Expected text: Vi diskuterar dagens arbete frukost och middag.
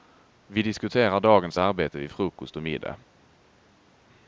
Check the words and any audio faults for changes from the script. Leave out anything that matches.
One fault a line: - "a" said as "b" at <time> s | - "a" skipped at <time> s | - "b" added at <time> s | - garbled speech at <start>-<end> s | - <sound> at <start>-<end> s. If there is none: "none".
- "vid" added at 2.0 s